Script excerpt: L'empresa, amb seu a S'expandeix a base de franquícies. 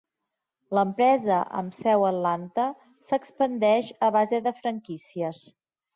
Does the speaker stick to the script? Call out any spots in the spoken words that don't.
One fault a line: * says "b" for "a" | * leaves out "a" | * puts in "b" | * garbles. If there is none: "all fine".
* puts in "Atlanta"